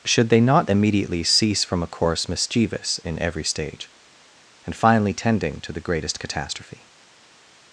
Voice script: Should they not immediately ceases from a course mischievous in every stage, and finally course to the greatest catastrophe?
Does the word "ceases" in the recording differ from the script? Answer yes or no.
yes